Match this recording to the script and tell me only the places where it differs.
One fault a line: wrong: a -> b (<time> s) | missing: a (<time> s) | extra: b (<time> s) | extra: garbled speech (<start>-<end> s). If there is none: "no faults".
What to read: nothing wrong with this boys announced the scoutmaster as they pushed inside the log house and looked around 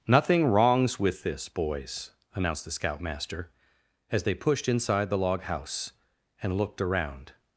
wrong: wrong -> wrongs (0.5 s)